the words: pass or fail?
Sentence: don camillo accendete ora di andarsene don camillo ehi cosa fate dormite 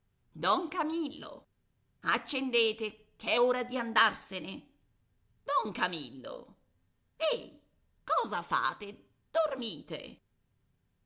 fail